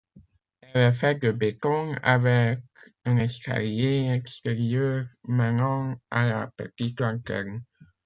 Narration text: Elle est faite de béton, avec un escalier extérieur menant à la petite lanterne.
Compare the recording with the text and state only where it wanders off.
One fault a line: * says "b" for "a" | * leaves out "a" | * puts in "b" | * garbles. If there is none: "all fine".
all fine